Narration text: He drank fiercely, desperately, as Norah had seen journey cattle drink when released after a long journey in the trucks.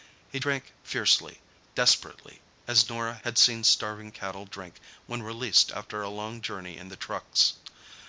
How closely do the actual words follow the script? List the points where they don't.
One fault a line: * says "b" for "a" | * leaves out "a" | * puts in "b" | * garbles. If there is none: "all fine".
* says "starving" for "journey"